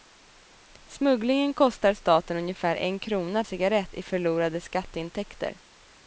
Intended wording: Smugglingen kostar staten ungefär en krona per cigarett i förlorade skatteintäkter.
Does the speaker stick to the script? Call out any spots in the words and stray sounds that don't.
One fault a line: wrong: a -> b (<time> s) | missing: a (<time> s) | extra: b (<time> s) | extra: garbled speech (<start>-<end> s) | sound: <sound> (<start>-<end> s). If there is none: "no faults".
missing: per (3.4 s)